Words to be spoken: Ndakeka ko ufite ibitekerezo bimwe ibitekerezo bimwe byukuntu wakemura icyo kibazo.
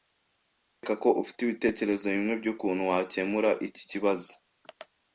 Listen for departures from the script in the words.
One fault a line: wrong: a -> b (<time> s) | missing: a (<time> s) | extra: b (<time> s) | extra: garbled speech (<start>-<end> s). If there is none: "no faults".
missing: ibitekerezo bimwe (2.3 s)
wrong: icyo -> iki (3.7 s)